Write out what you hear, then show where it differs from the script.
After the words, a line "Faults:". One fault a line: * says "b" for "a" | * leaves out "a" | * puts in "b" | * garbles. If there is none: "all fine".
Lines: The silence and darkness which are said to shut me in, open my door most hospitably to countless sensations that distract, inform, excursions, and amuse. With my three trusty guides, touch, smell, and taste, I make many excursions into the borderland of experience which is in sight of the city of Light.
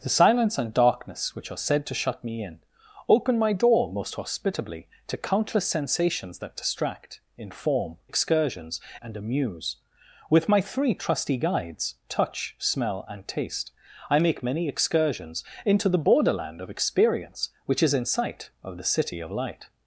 The silence and darkness which are said to shut me in, open my door most hospitably to countless sensations that distract, inform, excursions, and amuse. With my three trusty guides, touch, smell, and taste, I make many excursions into the borderland of experience which is in sight of the city of Light.
Faults:
all fine